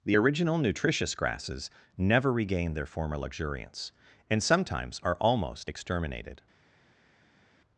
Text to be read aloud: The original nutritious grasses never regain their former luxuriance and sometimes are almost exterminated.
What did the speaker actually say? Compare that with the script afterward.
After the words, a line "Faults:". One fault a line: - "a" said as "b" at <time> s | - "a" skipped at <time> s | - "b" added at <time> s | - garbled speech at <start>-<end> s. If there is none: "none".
The original nutritious grasses never regain their former luxuriance and sometimes are almost exterminated.
Faults:
none